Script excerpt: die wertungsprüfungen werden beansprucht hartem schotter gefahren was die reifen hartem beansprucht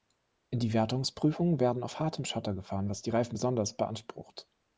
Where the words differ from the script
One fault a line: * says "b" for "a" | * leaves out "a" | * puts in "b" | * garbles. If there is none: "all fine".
* says "auf" for "beansprucht"
* says "besonders" for "hartem"